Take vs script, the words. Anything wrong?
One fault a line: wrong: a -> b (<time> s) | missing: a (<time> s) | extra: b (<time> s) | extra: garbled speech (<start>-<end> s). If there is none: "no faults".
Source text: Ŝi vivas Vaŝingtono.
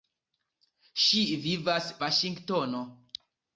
no faults